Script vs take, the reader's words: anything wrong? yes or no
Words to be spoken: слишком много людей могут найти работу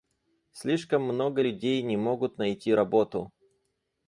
yes